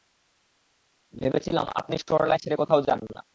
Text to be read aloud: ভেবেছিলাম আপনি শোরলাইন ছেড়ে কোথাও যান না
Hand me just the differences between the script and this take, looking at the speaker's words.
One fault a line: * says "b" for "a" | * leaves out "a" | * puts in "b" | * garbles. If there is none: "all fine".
all fine